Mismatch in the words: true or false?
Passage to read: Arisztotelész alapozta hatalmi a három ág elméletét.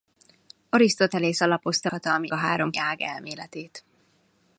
false